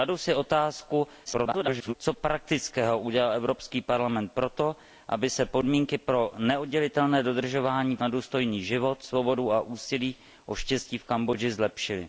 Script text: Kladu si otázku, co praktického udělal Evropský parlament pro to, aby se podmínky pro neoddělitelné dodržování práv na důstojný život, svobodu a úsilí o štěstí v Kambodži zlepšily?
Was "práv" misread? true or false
true